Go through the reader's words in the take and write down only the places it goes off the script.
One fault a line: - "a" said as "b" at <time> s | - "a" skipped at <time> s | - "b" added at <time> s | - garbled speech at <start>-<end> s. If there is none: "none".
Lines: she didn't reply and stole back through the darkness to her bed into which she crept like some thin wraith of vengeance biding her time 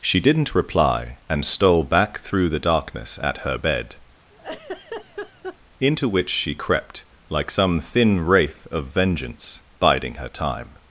- "to" said as "at" at 3.2 s